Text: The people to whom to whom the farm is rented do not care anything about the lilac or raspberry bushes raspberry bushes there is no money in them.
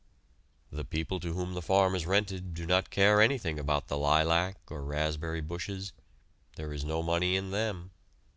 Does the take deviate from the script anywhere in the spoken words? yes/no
yes